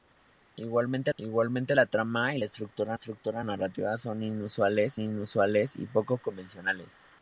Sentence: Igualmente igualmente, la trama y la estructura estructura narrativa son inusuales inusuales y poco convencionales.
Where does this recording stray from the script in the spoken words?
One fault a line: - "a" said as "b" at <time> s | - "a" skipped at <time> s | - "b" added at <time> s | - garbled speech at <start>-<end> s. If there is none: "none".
none